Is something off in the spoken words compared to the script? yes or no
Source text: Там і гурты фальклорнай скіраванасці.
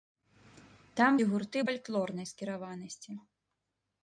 no